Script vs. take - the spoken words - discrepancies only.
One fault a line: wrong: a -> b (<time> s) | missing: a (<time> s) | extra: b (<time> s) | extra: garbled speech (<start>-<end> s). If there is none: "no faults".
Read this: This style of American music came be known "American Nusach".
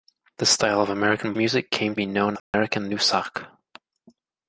no faults